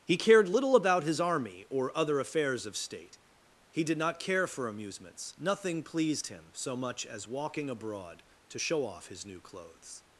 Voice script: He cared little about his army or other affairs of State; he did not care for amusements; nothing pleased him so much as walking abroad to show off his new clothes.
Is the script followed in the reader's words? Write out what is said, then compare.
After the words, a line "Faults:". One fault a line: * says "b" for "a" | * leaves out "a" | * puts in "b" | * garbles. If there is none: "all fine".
He cared little about his army or other affairs of State; he did not care for amusements; nothing pleased him so much as walking abroad to show off his new clothes.
Faults:
all fine